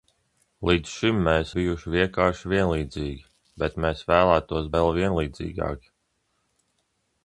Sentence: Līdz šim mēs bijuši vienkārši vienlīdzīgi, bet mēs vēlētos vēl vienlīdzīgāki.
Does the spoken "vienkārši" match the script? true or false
true